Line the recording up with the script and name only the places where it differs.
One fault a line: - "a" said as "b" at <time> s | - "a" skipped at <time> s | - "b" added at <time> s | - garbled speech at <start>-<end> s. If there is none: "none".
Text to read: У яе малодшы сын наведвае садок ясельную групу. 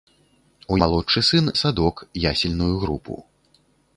- "яе" skipped at 0.8 s
- "наведвае" skipped at 1.5 s